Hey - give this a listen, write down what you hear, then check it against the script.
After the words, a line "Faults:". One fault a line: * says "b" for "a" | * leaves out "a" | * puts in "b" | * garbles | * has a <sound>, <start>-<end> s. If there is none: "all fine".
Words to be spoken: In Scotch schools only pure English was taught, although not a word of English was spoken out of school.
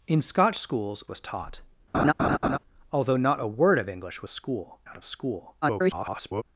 In Scotch schools was taught, although not a word of English was school out of school. [garbled]
Faults:
* leaves out "only pure English"
* has a laugh, 1.9-2.6 s
* says "school" for "spoken"
* garbles